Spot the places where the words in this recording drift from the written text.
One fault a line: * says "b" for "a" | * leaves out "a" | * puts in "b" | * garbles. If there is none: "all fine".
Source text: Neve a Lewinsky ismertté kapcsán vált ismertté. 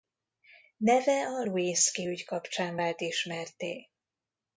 * says "ügy" for "ismertté"